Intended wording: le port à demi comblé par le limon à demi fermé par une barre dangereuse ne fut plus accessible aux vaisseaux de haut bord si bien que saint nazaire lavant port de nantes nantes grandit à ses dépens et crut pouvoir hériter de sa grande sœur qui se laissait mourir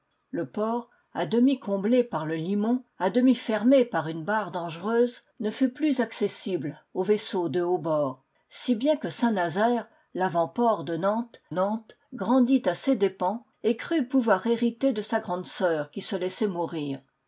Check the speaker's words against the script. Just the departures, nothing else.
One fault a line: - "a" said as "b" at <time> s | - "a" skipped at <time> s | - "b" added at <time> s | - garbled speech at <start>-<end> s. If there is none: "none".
none